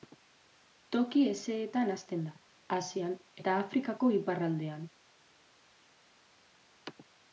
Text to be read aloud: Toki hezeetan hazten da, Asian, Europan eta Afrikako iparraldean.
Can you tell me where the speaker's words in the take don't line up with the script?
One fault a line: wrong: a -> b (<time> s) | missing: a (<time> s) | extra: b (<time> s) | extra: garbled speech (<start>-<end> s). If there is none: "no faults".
missing: Europan (3.2 s)